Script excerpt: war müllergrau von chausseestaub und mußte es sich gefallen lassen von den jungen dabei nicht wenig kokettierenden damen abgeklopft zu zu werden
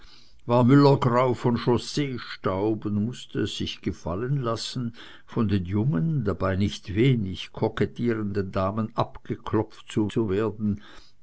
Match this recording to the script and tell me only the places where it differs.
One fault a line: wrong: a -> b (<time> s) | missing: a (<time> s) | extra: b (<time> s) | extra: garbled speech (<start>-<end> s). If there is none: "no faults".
no faults